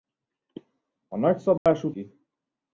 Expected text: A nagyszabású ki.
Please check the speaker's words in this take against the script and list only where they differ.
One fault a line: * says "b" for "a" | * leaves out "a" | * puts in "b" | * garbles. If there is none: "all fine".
all fine